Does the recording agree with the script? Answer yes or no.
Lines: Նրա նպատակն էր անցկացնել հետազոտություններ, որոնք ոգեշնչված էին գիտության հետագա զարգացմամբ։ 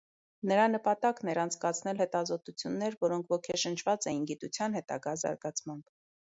yes